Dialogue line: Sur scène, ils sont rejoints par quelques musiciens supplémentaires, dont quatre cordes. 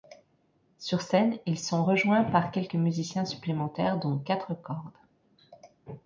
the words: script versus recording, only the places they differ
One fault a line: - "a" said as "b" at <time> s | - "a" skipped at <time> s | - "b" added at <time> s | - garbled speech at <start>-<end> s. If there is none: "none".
none